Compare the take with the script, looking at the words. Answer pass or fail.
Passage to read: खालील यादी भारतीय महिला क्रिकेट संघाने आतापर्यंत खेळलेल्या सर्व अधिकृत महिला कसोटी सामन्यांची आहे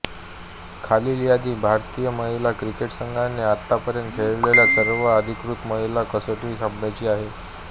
pass